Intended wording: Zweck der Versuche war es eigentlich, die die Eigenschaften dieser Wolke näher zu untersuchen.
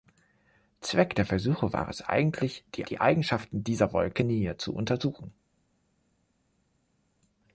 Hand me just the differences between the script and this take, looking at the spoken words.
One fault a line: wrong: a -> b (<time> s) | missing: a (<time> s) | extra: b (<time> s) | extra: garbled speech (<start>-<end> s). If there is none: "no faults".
no faults